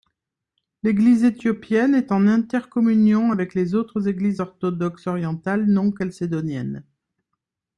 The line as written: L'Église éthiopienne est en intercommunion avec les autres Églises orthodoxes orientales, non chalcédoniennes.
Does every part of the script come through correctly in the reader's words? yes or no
yes